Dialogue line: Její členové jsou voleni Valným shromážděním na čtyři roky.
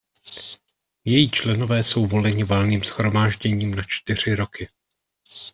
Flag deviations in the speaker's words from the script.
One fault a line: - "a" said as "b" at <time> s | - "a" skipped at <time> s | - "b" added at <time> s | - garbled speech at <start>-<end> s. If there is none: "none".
none